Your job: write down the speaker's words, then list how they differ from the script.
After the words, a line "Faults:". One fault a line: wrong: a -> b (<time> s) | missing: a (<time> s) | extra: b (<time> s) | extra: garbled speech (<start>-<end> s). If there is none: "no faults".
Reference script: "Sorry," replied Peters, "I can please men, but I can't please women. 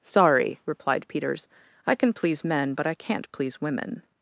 "Sorry," replied Peters, "I can please men, but I can't please women.
Faults:
no faults